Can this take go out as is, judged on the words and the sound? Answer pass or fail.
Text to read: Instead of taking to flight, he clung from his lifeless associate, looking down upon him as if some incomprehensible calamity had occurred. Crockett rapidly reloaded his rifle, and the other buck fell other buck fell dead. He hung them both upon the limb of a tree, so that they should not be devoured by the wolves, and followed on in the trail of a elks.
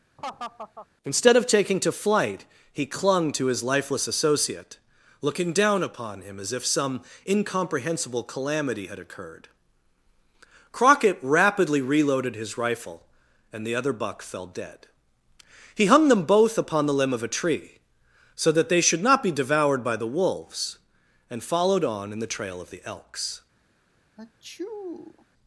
fail